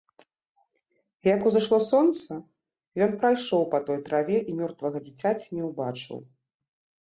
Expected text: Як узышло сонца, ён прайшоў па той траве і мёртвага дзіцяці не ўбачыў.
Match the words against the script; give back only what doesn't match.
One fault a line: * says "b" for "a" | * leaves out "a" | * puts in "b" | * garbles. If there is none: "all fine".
all fine